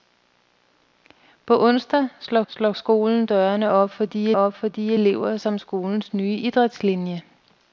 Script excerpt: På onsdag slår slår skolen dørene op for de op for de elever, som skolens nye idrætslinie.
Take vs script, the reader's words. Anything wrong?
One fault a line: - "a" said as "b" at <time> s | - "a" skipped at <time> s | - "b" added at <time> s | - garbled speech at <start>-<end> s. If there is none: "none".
none